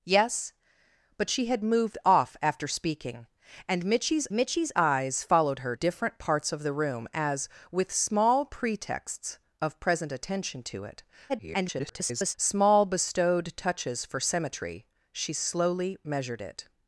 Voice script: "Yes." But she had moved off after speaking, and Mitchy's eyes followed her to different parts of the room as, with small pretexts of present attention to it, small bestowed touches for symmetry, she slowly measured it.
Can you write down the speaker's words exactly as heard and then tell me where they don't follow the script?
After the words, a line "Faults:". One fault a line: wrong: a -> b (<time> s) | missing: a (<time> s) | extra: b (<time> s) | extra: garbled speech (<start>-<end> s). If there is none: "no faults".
"Yes." But she had moved off after speaking, and Mitchy's Mitchy's eyes followed her different parts of the room as, with small pretexts of present attention to it, [garbled] small bestowed touches for symmetry, she slowly measured it.
Faults:
extra: Mitchy's (4.3 s)
missing: to (5.7 s)
extra: garbled speech (11.3-12.3 s)